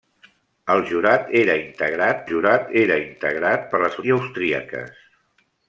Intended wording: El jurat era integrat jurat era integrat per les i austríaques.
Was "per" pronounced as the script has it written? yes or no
yes